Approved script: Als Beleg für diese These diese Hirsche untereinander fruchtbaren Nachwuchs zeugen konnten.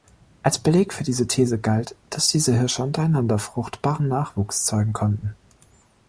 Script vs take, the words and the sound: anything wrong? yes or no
yes